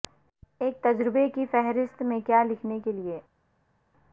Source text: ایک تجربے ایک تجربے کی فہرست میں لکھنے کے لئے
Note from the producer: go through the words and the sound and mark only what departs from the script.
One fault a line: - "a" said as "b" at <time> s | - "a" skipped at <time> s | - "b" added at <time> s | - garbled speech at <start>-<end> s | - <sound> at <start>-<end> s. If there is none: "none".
- "ایک تجربے" skipped at 1.3 s
- "کیا" added at 2.2 s